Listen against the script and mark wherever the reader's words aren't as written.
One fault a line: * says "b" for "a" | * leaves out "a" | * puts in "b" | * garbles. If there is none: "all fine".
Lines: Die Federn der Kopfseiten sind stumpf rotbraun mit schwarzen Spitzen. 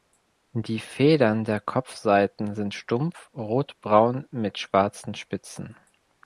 all fine